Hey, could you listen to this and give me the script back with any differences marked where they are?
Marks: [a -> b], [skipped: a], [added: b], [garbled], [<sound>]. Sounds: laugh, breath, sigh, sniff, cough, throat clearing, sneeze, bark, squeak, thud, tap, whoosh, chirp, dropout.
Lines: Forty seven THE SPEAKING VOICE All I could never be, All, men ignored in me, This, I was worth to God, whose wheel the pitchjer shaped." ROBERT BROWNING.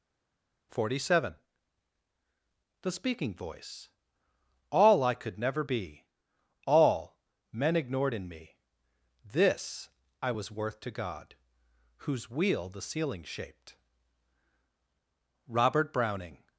Forty seven THE SPEAKING VOICE All I could never be, All, men ignored in me, This, I was worth to God, whose wheel the [pitchjer -> ceiling] shaped." ROBERT BROWNING.